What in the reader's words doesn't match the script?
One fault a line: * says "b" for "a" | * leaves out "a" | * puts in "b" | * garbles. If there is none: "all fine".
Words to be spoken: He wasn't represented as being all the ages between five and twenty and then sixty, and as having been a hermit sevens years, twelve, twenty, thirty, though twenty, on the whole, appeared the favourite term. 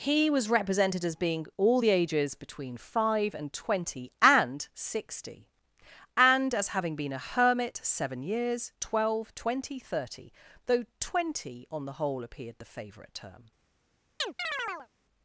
* says "was" for "wasn't"
* leaves out "then"
* says "seven" for "sevens"